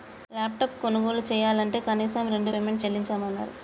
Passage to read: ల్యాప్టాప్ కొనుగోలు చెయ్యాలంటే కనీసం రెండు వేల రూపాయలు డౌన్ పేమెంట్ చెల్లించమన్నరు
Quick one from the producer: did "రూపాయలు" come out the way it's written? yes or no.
no